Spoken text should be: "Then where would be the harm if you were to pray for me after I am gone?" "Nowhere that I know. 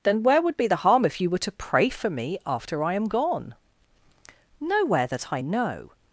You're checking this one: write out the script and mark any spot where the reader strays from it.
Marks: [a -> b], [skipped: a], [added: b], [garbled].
"Then where would be the harm if you were to pray for me after I am gone?" "Nowhere that I know.